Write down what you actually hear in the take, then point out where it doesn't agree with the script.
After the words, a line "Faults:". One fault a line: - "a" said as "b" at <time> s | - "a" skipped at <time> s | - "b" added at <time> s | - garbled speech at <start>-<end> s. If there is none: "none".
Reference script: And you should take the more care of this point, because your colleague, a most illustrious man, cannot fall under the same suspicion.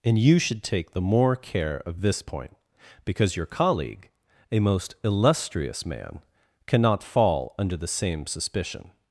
And you should take the more care of this point, because your colleague, a most illustrious man, cannot fall under the same suspicion.
Faults:
none